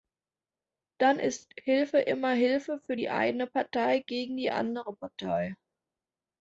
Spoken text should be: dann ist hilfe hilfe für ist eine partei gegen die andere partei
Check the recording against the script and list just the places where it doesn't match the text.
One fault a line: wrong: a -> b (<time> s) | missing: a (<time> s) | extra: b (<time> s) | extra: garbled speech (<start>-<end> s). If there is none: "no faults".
extra: immer (2.0 s)
wrong: ist -> die (2.9 s)